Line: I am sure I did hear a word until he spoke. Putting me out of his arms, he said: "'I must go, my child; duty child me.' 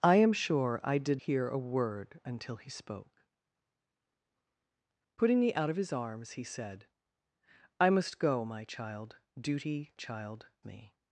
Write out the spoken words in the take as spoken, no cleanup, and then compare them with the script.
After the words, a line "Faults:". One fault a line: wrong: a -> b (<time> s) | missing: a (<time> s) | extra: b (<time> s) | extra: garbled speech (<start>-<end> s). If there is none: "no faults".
I am sure I did hear a word until he spoke. Putting me out of his arms, he said: "'I must go, my child; duty child me.'
Faults:
no faults